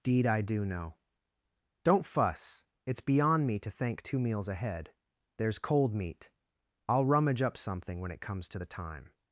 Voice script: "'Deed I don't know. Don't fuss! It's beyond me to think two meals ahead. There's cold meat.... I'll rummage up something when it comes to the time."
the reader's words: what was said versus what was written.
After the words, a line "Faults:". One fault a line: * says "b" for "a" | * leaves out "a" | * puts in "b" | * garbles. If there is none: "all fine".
"'Deed I do know. Don't fuss! It's beyond me to thank two meals ahead. There's cold meat.... I'll rummage up something when it comes to the time."
Faults:
* says "do" for "don't"
* says "thank" for "think"